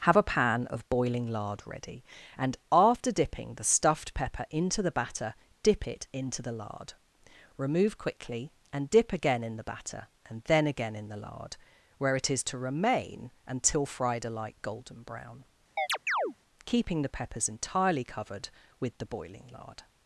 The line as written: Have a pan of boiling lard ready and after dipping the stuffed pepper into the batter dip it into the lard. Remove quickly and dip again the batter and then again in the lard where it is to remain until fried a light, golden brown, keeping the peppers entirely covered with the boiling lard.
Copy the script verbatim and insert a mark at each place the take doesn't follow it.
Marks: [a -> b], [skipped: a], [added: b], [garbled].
Have a pan of boiling lard ready and after dipping the stuffed pepper into the batter dip it into the lard. Remove quickly and dip again [added: in] the batter and then again in the lard where it is to remain until fried a light, golden brown, keeping the peppers entirely covered with the boiling lard.